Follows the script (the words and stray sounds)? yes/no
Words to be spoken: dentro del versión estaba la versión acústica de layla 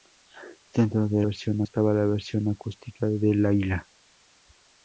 yes